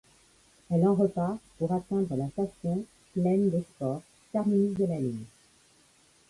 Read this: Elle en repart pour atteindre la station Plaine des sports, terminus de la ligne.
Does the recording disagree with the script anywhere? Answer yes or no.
no